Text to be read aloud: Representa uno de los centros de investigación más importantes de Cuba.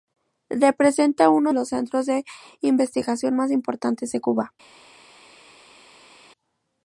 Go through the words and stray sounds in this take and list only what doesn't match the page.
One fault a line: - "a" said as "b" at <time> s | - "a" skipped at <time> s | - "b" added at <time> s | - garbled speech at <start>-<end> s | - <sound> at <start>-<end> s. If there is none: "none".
- "de" skipped at 1.5 s